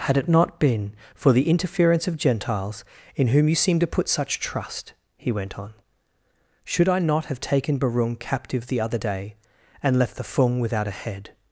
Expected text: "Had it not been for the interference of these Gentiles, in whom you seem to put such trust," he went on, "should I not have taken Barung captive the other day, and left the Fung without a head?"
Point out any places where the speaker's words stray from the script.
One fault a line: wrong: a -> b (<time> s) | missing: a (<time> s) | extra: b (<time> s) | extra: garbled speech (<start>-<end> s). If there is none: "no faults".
missing: these (2.2 s)